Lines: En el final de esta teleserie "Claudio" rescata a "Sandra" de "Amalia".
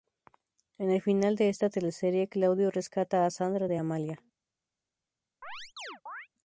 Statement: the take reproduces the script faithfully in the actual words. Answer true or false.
true